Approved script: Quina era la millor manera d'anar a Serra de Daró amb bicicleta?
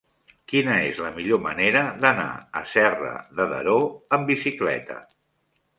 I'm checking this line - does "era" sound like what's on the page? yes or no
no